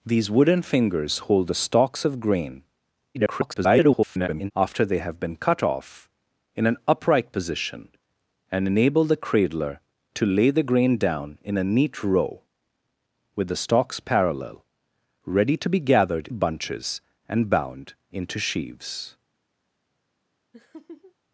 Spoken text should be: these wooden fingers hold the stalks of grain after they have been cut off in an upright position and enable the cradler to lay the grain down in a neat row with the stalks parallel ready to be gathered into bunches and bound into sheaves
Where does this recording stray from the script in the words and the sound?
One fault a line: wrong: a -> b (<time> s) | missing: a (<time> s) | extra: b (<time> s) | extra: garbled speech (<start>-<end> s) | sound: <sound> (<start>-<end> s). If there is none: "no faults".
extra: garbled speech (3.1-4.5 s)
missing: into (16.3 s)
sound: laugh (20.5-21.1 s)